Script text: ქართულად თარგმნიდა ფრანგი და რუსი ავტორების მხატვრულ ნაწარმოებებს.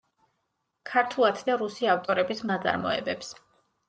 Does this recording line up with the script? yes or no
no